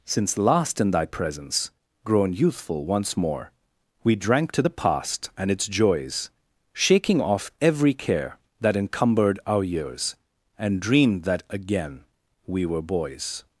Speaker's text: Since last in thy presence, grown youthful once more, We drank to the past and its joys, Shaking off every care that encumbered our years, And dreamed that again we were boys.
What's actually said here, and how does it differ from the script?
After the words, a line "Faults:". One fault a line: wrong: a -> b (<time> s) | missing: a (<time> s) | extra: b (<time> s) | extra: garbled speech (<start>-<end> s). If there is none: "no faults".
Since last in thy presence, grown youthful once more, We drank to the past and its joys, Shaking off every care that encumbered our years, And dreamed that again we were boys.
Faults:
no faults